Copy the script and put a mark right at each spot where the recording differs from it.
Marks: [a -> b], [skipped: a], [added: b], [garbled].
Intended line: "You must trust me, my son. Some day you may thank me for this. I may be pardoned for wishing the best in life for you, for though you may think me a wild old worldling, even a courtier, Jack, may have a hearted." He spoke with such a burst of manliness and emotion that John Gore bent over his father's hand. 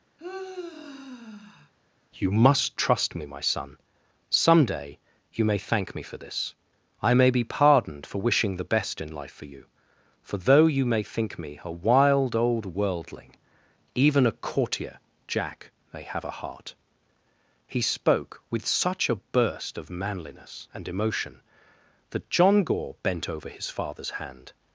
"You must trust me, my son. Some day you may thank me for this. I may be pardoned for wishing the best in life for you, for though you may think me a wild old worldling, even a courtier, Jack, may have a [hearted." -> heart] He spoke with such a burst of manliness and emotion that John Gore bent over his father's hand.